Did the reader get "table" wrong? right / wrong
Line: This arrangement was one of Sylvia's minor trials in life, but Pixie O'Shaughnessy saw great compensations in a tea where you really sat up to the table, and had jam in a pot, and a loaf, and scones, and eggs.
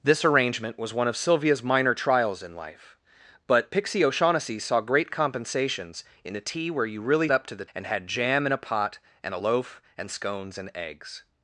wrong